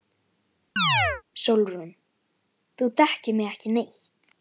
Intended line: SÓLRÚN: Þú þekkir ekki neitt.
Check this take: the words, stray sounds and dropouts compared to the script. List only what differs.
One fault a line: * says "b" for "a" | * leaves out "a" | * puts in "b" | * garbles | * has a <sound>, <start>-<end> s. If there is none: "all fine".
* has a chirp, 0.8-1.2 s
* puts in "mig"